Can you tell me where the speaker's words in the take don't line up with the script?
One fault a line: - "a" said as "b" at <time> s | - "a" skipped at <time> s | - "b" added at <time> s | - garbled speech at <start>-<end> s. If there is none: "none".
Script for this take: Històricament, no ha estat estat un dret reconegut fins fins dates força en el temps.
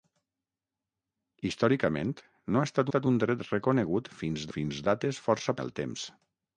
none